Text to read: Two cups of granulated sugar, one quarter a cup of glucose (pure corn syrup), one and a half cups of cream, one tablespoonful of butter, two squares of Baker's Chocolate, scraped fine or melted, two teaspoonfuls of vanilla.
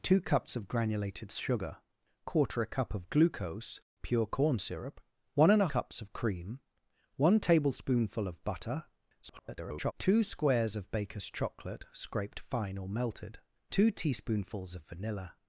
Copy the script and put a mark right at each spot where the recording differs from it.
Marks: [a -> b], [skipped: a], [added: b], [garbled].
Two cups of granulated sugar, [skipped: one] quarter a cup of glucose (pure corn syrup), one and a [skipped: half] cups of cream, one tablespoonful of butter, [garbled] two squares of Baker's Chocolate, scraped fine or melted, two teaspoonfuls of vanilla.